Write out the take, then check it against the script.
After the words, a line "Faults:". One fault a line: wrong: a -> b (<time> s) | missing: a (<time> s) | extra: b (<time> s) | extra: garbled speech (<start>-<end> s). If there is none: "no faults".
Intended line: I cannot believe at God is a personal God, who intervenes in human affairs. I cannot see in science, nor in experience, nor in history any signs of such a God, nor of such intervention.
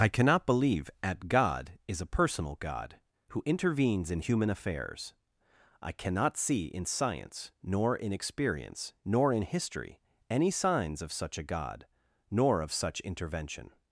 I cannot believe at God is a personal God, who intervenes in human affairs. I cannot see in science, nor in experience, nor in history any signs of such a God, nor of such intervention.
Faults:
no faults